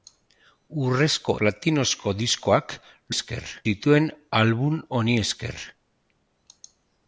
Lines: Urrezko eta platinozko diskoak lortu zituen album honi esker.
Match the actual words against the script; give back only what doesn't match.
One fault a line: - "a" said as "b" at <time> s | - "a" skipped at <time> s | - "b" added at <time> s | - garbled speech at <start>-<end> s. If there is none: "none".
- "eta" skipped at 1.4 s
- "lortu" said as "esker" at 3.2 s